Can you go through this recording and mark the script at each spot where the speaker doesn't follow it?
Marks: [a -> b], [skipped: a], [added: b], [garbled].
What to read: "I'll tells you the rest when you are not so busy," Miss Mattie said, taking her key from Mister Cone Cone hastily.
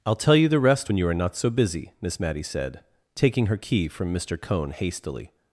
"I'll [tells -> tell] you the rest when you are not so busy," Miss Mattie said, taking her key from Mister Cone [skipped: Cone] hastily.